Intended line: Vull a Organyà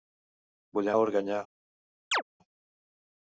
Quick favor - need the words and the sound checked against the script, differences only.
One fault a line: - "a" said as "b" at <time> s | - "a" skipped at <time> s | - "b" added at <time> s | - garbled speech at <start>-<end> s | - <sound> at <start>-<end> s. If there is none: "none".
- chirp at 2.1-2.2 s